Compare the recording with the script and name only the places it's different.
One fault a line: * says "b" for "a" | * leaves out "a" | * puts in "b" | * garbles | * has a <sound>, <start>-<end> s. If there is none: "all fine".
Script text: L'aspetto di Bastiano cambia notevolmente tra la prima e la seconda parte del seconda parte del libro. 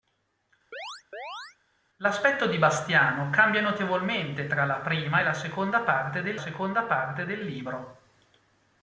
* has a chirp, 0.7-1.6 s